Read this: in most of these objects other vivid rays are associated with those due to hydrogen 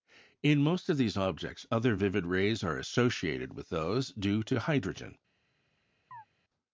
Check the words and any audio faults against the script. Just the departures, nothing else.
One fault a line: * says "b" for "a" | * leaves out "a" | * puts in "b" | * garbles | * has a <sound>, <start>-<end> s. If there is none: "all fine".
* has a chirp, 6.1-6.3 s